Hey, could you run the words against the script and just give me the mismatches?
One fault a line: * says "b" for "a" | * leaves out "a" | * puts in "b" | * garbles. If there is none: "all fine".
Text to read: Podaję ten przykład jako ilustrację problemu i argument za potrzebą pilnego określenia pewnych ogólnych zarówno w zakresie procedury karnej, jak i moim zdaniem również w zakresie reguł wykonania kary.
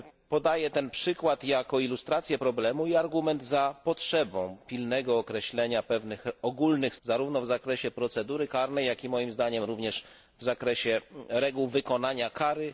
all fine